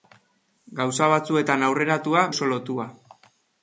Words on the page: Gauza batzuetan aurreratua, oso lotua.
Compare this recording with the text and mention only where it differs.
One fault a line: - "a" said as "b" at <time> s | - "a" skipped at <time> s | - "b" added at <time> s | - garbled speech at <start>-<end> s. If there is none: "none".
none